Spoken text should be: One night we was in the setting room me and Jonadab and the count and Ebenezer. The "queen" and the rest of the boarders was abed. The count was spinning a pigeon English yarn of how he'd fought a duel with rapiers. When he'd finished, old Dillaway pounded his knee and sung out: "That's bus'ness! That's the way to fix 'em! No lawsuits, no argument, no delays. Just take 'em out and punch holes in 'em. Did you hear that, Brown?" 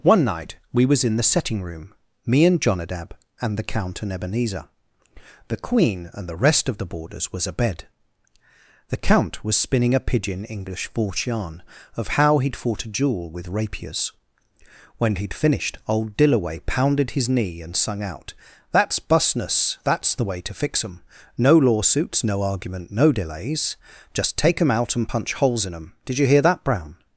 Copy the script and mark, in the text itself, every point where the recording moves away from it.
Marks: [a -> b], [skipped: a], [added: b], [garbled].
One night we was in the setting room me and Jonadab and the count and Ebenezer. The "queen" and the rest of the boarders was abed. The count was spinning a pigeon English [added: false] yarn of how he'd fought a duel with rapiers. When he'd finished, old Dillaway pounded his knee and sung out: "That's bus'ness! That's the way to fix 'em! No lawsuits, no argument, no delays. Just take 'em out and punch holes in 'em. Did you hear that, Brown?"